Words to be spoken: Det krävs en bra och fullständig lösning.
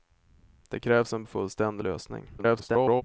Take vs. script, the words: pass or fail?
fail